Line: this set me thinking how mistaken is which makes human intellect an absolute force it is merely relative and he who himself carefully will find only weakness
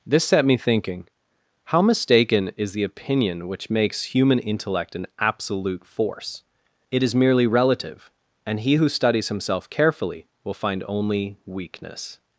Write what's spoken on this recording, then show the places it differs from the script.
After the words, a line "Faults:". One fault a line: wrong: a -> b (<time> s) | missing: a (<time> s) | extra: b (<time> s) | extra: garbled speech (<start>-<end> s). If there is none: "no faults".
this set me thinking how mistaken is the opinion which makes human intellect an absolute force it is merely relative and he who studies himself carefully will find only weakness
Faults:
extra: the opinion (2.7 s)
extra: studies (8.9 s)